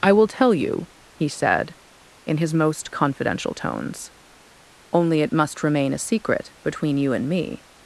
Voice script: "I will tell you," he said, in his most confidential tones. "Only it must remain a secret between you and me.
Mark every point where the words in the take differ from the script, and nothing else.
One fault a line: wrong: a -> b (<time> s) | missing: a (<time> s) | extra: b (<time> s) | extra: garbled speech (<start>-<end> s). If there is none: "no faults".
no faults